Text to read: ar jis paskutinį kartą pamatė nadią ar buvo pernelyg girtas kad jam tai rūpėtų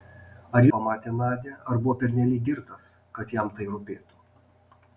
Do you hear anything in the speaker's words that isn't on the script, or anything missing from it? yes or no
yes